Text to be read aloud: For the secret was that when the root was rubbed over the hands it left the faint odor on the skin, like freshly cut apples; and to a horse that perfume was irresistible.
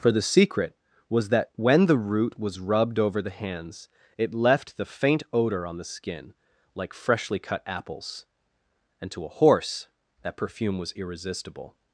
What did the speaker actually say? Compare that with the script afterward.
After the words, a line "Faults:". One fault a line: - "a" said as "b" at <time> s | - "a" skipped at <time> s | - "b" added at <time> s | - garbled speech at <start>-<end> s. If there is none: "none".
For the secret was that when the root was rubbed over the hands it left the faint odor on the skin, like freshly cut apples; and to a horse that perfume was irresistible.
Faults:
none